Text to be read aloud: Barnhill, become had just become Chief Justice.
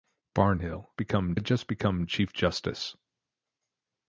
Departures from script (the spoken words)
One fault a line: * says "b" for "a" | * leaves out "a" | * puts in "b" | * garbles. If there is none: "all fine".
all fine